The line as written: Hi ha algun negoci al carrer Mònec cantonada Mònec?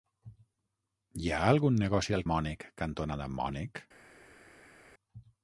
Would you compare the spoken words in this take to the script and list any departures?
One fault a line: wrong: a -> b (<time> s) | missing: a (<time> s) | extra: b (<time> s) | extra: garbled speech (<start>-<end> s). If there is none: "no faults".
missing: carrer (2.2 s)